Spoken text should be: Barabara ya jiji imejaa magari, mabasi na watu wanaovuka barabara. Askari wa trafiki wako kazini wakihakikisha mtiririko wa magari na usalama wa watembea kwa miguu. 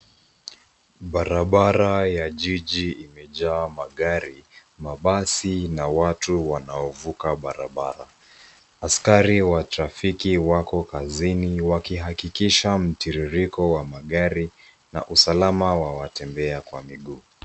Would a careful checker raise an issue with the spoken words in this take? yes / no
no